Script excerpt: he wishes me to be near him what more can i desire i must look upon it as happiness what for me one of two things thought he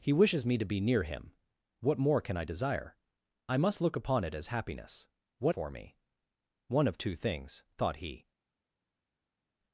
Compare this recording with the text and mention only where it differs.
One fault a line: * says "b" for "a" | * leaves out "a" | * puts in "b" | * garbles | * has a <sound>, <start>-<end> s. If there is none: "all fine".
all fine